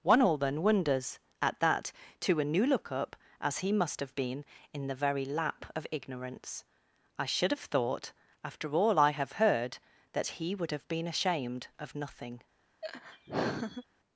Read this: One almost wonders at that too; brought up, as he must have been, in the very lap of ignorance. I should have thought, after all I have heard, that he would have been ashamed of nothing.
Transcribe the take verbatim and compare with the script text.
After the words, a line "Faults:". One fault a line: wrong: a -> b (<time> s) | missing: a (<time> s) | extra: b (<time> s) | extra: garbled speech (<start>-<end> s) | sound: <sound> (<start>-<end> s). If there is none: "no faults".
One all then wonders at that to a new look up, as he must have been, in the very lap of ignorance. I should have thought, after all I have heard, that he would have been ashamed of nothing.
Faults:
wrong: almost -> all then (0.2 s)
wrong: too brought -> to a new look (2.2 s)
sound: laugh (12.8-13.8 s)